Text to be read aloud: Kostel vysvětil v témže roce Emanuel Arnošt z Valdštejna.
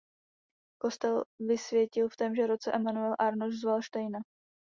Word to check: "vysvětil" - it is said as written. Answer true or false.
true